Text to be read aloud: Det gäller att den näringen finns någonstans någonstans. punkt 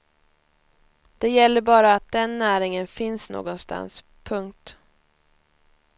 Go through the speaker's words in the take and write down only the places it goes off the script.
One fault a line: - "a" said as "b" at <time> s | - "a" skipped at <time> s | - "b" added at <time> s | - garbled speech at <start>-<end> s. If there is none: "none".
- "bara" added at 1.6 s
- "någonstans" skipped at 4.0 s